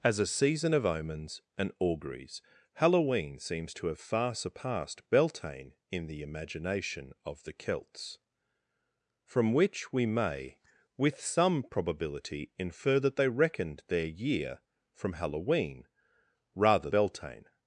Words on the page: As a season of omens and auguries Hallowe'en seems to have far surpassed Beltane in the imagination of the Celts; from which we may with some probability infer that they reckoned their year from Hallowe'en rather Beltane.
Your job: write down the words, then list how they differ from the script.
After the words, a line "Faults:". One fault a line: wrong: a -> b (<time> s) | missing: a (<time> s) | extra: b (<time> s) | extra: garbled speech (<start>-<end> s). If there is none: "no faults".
As a season of omens and auguries Hallowe'en seems to have far surpassed Beltane in the imagination of the Celts; from which we may with some probability infer that they reckoned their year from Hallowe'en rather Beltane.
Faults:
no faults